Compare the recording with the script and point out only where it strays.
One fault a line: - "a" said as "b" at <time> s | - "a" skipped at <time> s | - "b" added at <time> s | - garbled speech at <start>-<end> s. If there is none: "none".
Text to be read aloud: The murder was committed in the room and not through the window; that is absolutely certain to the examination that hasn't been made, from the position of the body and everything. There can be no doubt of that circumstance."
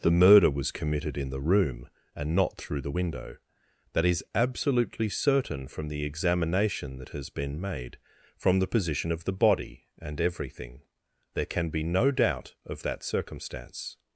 - "to" said as "from" at 5.7 s
- "hasn't" said as "has" at 7.1 s